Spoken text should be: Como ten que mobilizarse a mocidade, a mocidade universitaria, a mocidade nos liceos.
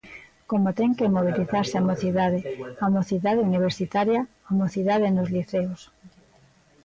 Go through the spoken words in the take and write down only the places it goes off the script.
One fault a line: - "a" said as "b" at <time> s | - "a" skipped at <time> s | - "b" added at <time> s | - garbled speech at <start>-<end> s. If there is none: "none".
none